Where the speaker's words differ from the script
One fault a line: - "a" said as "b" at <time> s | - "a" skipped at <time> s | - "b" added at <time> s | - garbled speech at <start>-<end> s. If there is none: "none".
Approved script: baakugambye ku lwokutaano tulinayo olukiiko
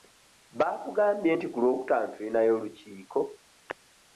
- "nti" added at 1.3 s